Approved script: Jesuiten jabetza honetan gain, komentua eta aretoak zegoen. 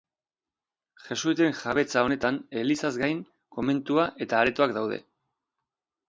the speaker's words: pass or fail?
fail